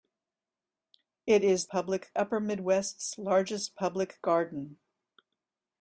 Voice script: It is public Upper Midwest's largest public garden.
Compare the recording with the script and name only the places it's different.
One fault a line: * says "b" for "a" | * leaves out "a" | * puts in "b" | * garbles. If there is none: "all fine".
all fine